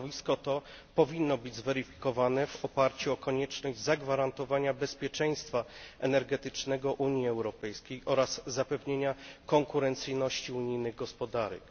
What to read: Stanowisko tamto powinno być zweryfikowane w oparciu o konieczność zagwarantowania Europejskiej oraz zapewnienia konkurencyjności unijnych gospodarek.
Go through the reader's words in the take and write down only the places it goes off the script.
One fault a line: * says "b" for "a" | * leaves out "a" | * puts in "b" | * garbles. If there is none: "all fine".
* says "to" for "tamto"
* puts in "bezpieczeństwa energetycznego Unii"